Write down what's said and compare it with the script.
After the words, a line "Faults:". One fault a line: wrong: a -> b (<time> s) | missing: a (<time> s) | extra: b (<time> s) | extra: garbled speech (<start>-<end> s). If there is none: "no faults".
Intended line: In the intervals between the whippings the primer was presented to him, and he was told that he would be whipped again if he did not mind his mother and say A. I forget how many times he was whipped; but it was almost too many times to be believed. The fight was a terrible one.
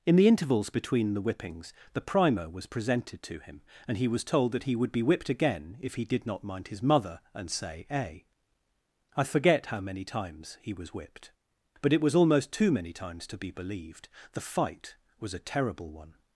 In the intervals between the whippings the primer was presented to him, and he was told that he would be whipped again if he did not mind his mother and say A. I forget how many times he was whipped; but it was almost too many times to be believed. The fight was a terrible one.
Faults:
no faults